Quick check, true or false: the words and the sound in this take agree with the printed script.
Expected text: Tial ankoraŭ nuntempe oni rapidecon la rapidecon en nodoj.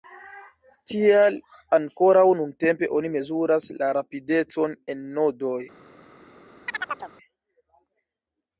false